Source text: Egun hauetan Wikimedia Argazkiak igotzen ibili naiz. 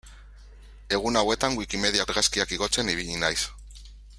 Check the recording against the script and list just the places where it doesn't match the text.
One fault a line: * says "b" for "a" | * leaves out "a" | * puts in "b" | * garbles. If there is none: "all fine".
all fine